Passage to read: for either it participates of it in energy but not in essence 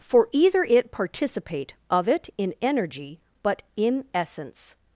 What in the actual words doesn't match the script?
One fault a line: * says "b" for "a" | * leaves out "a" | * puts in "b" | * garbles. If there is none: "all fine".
* says "participate" for "participates"
* leaves out "not"